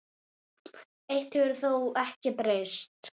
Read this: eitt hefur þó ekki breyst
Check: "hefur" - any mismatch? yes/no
no